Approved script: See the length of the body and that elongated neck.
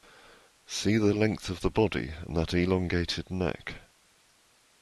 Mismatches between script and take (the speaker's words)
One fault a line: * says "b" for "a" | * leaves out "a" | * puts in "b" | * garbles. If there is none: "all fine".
all fine